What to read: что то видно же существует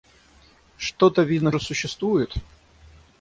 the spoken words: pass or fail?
pass